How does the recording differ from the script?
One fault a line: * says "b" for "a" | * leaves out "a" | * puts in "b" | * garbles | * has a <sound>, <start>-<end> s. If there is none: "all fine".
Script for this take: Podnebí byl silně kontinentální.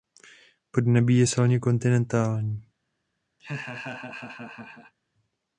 * says "je" for "byl"
* has a laugh, 3.4-4.9 s